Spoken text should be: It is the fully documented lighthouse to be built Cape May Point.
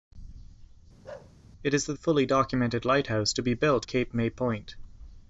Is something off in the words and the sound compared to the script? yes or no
yes